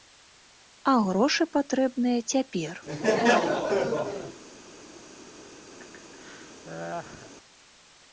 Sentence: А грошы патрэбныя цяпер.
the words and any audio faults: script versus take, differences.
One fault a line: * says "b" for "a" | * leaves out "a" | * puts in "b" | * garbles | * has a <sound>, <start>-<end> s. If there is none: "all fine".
* has a laugh, 2.9-4.4 s
* has a laugh, 5.8-7.3 s